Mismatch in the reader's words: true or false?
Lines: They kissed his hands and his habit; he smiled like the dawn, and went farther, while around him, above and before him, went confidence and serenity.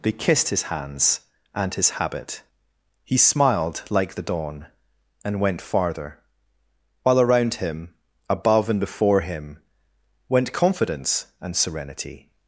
false